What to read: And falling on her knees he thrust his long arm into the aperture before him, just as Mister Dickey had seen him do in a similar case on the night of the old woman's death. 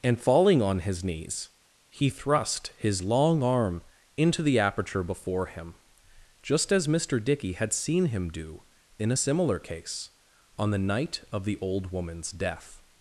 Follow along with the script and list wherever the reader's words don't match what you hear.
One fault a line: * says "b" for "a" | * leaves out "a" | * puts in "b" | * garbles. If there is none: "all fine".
* says "his" for "her"